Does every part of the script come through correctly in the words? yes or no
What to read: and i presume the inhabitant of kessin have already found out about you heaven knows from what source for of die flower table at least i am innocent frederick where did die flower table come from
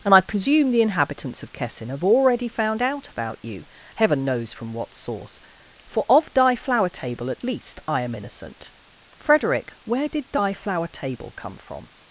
no